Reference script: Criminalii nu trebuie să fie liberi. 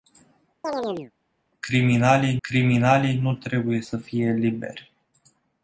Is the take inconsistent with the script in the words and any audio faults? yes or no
yes